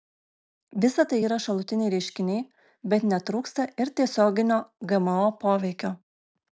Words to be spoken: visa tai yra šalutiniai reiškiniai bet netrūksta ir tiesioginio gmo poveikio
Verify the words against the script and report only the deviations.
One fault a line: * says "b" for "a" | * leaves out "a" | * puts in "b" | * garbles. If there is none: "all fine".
all fine